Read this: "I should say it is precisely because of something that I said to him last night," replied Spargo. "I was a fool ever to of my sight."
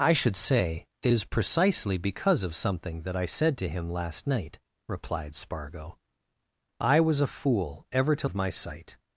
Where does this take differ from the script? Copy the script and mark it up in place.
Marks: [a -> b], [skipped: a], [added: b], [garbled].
"I should say it is precisely because of something that I said to him last night," replied Spargo. "I was a fool ever to of my sight."